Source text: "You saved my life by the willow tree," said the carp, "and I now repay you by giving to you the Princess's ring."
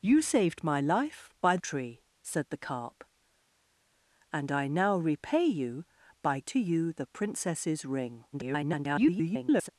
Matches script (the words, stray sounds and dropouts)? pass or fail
fail